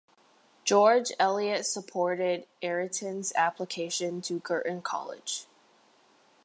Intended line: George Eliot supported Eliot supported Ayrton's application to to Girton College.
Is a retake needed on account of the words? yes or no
yes